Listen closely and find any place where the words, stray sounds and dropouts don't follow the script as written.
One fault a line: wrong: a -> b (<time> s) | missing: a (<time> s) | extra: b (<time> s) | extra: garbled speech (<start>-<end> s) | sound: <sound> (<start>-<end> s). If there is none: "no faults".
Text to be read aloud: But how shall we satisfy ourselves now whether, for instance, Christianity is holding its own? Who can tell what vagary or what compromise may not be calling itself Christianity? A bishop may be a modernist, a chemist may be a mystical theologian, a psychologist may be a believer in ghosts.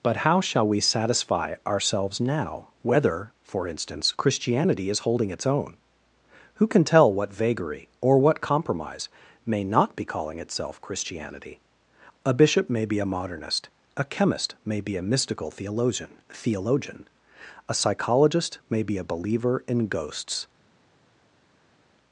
extra: theologian (16.3 s)